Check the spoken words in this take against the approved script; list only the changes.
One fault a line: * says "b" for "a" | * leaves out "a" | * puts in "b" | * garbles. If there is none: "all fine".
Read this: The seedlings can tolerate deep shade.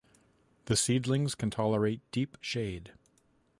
all fine